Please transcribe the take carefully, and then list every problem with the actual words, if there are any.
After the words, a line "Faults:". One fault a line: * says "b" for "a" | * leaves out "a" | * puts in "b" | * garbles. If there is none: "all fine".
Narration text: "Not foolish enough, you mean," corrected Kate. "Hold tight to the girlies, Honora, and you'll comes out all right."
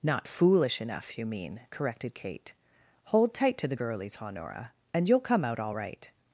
"Not foolish enough, you mean," corrected Kate. "Hold tight to the girlies, Honora, and you'll come out all right."
Faults:
* says "come" for "comes"